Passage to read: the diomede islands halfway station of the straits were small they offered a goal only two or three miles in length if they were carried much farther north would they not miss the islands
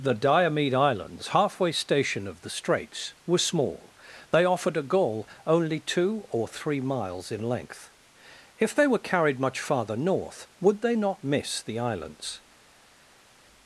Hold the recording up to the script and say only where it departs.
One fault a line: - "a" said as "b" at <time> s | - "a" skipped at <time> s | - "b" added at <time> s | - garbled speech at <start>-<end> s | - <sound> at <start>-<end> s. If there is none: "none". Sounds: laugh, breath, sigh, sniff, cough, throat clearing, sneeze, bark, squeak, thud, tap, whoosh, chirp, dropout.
none